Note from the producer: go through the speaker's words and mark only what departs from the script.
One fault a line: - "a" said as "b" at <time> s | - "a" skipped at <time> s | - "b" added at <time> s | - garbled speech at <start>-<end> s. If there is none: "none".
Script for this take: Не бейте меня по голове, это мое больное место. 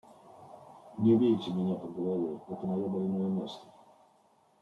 none